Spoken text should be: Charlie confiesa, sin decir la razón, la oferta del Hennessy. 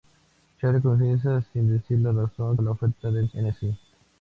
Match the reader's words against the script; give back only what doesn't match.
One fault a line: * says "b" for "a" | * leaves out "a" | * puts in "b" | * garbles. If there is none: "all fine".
all fine